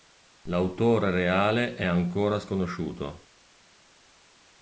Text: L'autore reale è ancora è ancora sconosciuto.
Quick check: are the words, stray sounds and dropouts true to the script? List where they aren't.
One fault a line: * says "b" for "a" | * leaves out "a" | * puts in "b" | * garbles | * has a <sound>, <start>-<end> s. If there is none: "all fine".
* leaves out "è ancora"